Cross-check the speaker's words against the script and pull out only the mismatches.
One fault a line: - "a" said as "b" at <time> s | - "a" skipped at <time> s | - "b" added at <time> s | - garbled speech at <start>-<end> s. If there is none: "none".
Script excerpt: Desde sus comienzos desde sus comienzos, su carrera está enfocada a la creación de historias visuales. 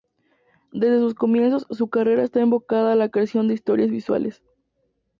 - "desde sus comienzos" skipped at 1.7 s